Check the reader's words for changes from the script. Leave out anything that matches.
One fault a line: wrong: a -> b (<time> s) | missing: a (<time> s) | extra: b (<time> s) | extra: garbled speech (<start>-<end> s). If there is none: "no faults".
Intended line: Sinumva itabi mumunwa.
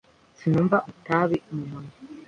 no faults